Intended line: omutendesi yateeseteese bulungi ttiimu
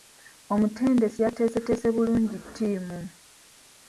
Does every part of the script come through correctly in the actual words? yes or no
yes